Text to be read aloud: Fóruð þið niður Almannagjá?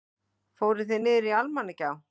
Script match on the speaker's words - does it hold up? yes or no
yes